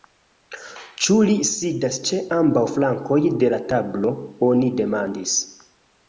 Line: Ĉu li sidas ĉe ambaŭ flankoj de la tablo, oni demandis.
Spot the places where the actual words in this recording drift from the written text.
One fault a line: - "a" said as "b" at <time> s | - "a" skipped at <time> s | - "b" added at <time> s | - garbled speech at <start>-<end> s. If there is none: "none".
none